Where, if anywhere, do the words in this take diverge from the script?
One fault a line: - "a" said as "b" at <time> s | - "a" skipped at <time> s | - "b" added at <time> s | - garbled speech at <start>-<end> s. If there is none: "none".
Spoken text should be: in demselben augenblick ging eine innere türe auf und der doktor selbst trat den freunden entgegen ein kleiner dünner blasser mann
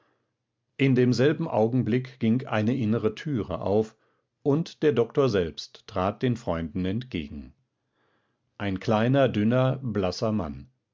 none